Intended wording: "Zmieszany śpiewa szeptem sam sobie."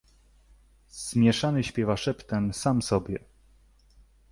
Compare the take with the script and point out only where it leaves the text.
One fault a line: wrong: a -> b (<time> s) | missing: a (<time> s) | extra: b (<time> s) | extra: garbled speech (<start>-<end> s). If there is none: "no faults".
no faults